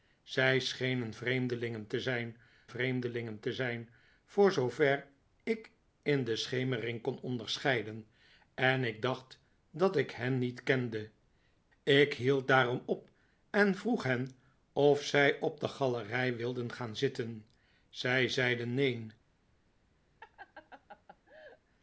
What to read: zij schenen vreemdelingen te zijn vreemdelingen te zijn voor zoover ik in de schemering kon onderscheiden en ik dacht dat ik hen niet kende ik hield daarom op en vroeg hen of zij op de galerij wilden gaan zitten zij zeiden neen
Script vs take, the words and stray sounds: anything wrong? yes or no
yes